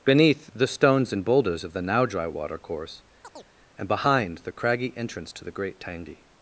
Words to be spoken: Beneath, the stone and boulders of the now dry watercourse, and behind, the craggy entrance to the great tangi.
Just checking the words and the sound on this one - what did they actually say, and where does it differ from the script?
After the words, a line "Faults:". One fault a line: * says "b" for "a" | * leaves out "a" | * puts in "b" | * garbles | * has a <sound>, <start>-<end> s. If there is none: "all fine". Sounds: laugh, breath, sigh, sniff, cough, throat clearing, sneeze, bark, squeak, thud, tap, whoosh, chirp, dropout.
Beneath, the stones and boulders of the now dry watercourse, and behind, the craggy entrance to the great tangi.
Faults:
* says "stones" for "stone"
* has a chirp, 3.2-3.5 s